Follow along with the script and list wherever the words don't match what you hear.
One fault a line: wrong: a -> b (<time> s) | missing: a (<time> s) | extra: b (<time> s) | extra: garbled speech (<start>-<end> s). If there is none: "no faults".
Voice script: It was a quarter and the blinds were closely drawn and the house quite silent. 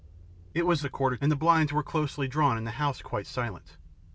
no faults